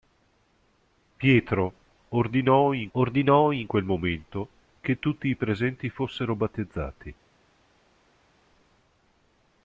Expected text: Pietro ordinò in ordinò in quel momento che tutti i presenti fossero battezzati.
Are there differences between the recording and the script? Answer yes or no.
no